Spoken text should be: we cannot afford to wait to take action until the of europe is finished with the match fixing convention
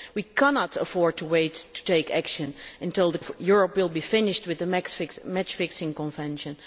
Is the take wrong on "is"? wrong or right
right